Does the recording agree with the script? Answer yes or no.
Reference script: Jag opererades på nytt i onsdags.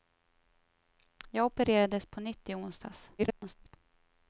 no